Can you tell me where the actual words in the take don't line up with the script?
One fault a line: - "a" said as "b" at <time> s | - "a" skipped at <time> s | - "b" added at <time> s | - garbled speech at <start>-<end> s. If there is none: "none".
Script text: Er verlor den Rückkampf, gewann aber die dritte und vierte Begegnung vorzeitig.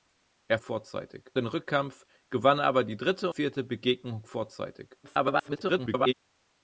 - "verlor" said as "vorzeitig" at 0.6 s
- "und" skipped at 3.3 s
- garbled speech at 5.0-6.1 s